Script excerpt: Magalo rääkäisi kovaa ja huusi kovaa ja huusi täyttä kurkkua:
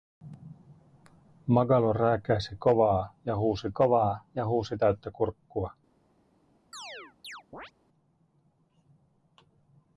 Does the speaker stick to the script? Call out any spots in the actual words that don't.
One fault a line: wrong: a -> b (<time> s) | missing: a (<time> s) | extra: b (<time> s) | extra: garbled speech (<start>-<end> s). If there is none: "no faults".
no faults